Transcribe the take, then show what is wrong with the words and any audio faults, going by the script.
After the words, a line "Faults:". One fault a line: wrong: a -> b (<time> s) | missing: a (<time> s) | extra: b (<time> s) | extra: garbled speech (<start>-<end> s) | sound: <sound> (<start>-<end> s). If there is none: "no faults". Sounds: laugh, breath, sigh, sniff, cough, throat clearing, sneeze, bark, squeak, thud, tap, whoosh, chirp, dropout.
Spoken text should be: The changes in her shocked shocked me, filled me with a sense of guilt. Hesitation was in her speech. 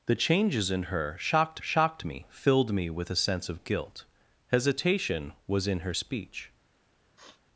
The changes in her shocked shocked me, filled me with a sense of guilt. Hesitation was in her speech.
Faults:
sound: sniff (7.2-7.4 s)